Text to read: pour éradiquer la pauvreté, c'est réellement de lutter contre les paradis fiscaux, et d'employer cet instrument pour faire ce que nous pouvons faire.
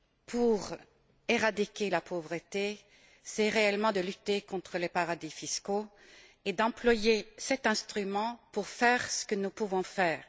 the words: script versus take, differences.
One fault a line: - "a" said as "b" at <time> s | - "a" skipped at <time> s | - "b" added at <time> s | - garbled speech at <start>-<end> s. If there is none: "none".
none